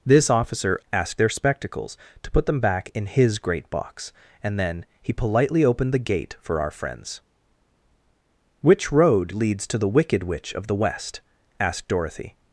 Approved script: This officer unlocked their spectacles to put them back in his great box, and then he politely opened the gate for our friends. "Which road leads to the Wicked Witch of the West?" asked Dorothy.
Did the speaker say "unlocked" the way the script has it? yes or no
no